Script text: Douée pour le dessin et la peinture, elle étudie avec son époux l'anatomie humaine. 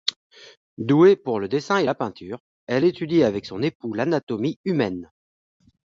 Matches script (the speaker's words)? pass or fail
pass